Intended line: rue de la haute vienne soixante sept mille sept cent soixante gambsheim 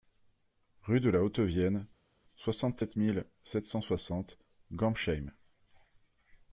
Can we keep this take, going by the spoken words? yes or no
yes